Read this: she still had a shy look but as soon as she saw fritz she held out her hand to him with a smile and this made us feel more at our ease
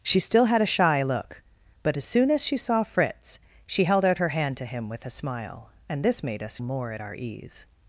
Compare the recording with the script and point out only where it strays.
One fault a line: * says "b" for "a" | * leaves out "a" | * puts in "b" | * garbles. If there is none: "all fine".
* leaves out "feel"